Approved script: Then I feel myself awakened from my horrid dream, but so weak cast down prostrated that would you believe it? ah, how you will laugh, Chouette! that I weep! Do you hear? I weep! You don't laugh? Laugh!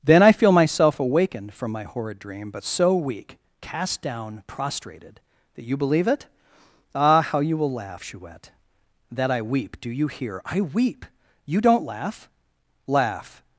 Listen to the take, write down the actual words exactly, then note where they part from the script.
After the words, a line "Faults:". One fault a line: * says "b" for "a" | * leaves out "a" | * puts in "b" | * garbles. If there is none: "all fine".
Then I feel myself awakened from my horrid dream, but so weak cast down prostrated that you believe it? ah, how you will laugh, Chouette! that I weep! Do you hear? I weep! You don't laugh? Laugh!
Faults:
* leaves out "would"